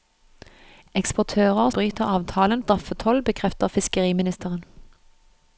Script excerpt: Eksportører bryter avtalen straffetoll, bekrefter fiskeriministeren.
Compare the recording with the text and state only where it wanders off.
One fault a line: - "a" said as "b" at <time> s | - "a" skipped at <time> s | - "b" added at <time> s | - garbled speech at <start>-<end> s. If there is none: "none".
none